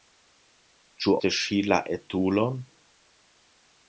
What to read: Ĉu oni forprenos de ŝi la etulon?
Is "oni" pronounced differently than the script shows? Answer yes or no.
yes